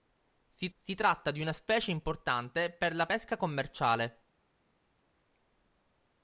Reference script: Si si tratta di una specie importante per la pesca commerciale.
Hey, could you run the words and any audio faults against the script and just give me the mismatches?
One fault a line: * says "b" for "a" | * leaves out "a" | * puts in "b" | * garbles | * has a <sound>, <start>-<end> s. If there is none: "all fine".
all fine